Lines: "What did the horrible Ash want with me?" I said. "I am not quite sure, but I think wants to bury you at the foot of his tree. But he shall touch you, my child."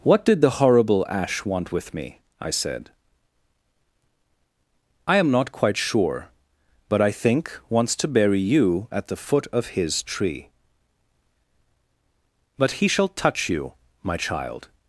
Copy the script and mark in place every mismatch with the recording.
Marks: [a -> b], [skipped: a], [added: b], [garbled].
"What did the horrible Ash want with me?" I said. "I am not quite sure, but I think wants to bury you at the foot of his tree. But he shall touch you, my child."